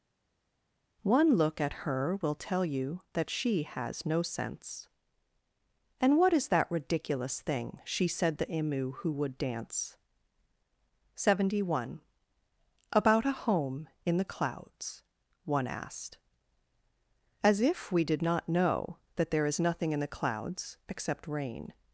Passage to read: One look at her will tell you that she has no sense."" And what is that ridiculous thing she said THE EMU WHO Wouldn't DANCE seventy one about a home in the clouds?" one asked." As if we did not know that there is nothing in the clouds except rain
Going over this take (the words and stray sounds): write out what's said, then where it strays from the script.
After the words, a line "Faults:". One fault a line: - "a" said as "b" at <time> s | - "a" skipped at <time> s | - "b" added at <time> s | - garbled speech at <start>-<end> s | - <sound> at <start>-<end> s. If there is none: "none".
One look at her will tell you that she has no sense."" And what is that ridiculous thing she said THE EMU WHO WOULD DANCE seventy one about a home in the clouds?" one asked." As if we did not know that there is nothing in the clouds except rain
Faults:
- "Wouldn't" said as "WOULD" at 9.1 s